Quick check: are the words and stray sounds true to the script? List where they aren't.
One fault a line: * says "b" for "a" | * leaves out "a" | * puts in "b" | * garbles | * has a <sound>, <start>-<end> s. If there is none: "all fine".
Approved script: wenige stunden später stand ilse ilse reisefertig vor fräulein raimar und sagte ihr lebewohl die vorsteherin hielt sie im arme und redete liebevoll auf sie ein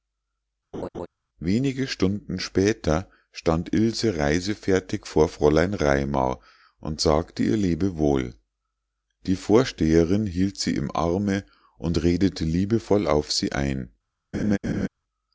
* has a laugh, 0.7-1.1 s
* leaves out "ilse"
* has a laugh, 14.3-14.9 s